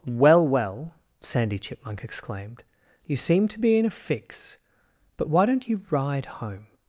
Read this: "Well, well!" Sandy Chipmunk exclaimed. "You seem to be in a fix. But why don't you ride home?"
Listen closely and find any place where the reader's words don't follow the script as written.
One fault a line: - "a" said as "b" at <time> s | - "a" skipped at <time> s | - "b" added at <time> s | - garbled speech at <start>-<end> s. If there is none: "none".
none